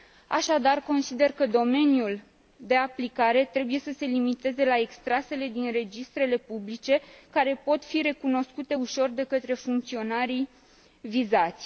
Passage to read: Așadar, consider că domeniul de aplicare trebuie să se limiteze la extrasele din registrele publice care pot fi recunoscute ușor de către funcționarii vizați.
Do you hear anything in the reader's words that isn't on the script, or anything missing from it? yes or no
no